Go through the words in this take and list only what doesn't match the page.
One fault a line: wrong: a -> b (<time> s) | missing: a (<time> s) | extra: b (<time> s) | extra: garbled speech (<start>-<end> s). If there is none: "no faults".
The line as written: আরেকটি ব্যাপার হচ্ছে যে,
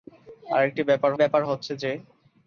extra: ব্যাপার (1.1 s)